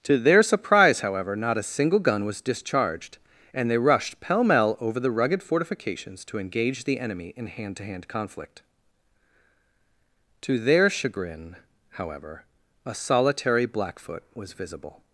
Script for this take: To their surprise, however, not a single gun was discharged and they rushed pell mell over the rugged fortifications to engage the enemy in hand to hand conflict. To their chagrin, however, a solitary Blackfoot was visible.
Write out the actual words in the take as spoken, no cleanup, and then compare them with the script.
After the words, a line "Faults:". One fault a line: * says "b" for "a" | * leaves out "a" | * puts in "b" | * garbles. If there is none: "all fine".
To their surprise, however, not a single gun was discharged and they rushed pell mell over the rugged fortifications to engage the enemy in hand to hand conflict. To their chagrin, however, a solitary Blackfoot was visible.
Faults:
all fine